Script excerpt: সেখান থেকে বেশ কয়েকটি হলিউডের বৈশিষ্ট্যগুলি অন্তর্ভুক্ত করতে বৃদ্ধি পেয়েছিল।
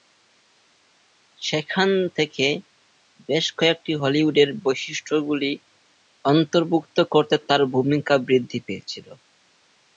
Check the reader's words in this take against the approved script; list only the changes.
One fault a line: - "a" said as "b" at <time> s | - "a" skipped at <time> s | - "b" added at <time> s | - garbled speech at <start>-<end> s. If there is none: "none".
- "তার ভূমিকা" added at 7.5 s